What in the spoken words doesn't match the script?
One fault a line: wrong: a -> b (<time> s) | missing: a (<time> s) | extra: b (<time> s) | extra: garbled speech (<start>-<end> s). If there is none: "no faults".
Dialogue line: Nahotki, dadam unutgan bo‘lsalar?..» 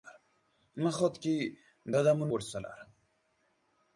missing: unutgan (2.3 s)